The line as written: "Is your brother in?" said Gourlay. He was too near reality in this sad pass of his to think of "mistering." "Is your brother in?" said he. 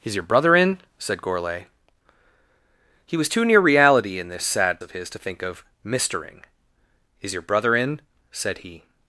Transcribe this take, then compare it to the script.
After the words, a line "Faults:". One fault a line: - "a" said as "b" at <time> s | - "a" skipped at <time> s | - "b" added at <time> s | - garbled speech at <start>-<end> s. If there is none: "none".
"Is your brother in?" said Gourlay. He was too near reality in this sad of his to think of "mistering." "Is your brother in?" said he.
Faults:
- "pass" skipped at 4.8 s